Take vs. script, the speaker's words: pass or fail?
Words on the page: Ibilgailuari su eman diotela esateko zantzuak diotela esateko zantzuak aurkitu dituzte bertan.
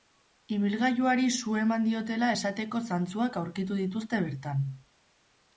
fail